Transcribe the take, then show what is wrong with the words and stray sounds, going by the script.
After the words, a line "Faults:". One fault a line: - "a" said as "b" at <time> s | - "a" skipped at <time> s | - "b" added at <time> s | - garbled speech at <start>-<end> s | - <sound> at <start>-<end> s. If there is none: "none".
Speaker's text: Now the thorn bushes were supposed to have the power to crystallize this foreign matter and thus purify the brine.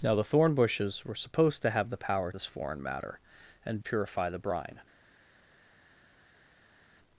Now the thorn bushes were supposed to have the power this foreign matter and purify the brine.
Faults:
- "to crystallize" skipped at 2.3 s
- "thus" skipped at 3.8 s